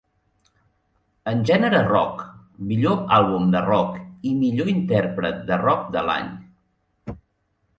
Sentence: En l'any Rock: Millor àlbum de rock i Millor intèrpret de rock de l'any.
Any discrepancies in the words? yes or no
yes